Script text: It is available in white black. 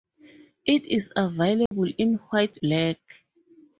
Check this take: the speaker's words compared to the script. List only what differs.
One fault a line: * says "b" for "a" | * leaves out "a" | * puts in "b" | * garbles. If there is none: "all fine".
all fine